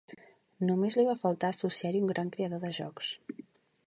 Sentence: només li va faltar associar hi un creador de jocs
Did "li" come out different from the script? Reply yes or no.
no